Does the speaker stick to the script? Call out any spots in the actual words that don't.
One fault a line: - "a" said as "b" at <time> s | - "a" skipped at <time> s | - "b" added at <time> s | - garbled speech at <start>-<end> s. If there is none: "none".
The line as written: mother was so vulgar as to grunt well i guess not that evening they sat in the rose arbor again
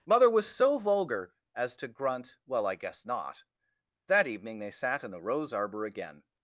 none